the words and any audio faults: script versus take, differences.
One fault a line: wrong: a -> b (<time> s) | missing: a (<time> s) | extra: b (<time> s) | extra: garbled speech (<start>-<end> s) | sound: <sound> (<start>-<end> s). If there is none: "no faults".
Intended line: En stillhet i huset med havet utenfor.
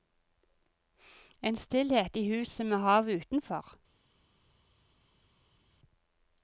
no faults